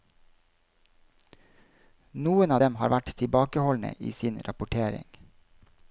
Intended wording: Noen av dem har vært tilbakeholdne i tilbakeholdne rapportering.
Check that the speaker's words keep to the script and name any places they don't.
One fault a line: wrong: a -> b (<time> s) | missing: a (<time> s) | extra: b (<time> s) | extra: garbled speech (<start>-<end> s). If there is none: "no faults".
wrong: tilbakeholdne -> sin (4.1 s)